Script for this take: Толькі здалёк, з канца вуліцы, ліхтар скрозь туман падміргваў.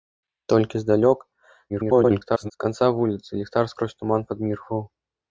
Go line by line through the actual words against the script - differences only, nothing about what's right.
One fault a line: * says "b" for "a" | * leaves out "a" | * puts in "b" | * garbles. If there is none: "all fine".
* garbles